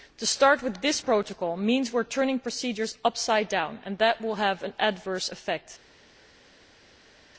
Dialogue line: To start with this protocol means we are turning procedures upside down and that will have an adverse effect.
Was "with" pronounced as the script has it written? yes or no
yes